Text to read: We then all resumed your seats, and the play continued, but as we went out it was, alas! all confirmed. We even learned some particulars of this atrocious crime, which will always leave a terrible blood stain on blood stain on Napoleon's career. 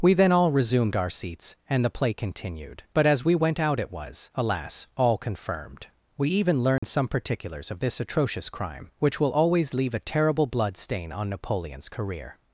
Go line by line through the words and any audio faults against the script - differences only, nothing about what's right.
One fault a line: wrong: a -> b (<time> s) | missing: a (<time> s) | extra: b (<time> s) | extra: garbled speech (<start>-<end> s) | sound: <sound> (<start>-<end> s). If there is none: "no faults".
wrong: your -> our (0.9 s)
sound: dropout (6.8-6.8 s)
missing: blood stain on (11.3 s)